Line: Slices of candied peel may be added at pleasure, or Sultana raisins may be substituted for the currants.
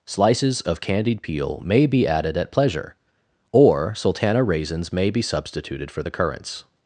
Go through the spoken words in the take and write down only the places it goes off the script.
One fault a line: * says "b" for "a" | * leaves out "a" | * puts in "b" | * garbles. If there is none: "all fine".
all fine